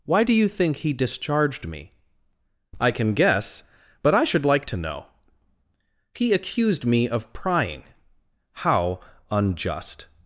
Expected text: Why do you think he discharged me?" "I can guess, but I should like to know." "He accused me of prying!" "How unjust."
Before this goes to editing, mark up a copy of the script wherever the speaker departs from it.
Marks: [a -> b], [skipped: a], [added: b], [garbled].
Why do you think he discharged me?" "I can guess, but I should like to know." "He accused me of prying!" "How unjust."